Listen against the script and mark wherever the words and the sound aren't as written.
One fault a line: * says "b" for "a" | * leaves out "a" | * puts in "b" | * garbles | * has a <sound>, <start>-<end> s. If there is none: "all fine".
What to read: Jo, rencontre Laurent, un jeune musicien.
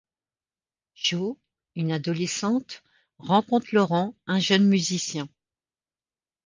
* puts in "une adolescente"